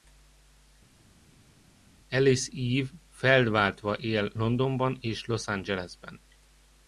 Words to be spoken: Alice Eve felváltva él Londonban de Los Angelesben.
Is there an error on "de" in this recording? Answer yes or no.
yes